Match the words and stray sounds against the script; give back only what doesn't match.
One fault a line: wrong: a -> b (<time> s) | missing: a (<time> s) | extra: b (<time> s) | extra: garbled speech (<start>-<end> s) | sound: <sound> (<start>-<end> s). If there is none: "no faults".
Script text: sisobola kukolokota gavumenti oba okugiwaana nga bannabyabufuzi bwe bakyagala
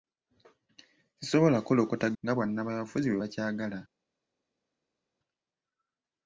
missing: gavumenti oba okugiwaana (2.1 s)